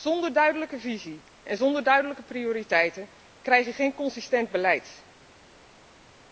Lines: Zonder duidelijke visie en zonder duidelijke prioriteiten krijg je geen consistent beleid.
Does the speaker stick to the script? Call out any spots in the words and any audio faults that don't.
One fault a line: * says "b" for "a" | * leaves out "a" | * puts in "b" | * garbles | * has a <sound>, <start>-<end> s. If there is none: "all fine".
all fine